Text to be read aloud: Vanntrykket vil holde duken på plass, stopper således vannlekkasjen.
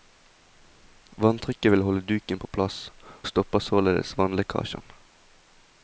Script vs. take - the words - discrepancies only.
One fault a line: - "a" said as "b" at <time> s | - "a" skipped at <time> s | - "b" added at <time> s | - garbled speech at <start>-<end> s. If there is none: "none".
none